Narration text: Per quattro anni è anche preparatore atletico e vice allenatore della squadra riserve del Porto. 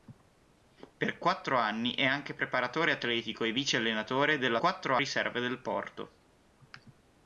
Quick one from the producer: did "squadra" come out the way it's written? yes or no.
no